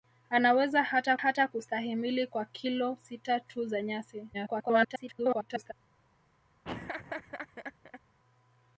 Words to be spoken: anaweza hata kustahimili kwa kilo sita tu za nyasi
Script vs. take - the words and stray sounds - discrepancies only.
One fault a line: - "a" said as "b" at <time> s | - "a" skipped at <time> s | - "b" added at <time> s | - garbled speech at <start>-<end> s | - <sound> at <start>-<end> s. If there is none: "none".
- "hata" added at 1.1 s
- garbled speech at 4.3-5.7 s
- laugh at 6.6-8.0 s